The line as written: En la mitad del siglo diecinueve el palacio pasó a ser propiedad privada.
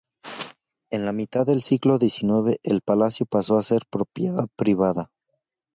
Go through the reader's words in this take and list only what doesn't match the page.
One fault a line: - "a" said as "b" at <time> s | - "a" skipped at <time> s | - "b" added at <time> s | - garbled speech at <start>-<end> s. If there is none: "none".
none